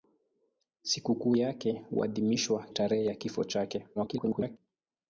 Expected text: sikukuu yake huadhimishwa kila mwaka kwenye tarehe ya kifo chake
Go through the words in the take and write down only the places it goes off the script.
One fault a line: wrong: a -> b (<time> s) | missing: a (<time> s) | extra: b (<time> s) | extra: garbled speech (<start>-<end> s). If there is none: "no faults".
missing: kila mwaka kwenye (2.7 s)
extra: garbled speech (4.0-4.6 s)